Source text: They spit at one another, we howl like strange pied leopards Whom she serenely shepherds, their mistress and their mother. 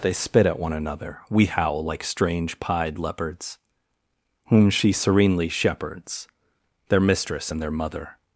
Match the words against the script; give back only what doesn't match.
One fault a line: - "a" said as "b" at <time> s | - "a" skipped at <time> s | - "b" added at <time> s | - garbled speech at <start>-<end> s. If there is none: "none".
none